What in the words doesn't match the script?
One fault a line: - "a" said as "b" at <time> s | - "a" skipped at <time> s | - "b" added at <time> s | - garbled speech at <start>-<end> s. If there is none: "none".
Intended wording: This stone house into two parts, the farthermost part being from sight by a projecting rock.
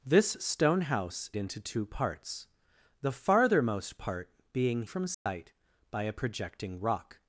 none